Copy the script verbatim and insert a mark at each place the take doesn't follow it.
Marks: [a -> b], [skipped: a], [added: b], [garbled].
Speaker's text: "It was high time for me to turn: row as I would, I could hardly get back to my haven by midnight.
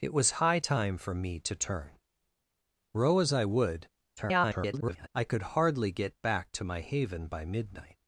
"It was high time for me to turn: row as I would, [garbled] I could hardly get back to my haven by midnight.